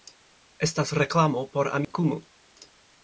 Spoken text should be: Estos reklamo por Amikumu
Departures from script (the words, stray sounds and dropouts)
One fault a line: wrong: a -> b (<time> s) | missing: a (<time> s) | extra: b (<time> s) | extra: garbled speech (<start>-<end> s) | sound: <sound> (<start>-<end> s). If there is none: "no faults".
wrong: Estos -> Estas (0.7 s)
sound: dropout (1.8-1.9 s)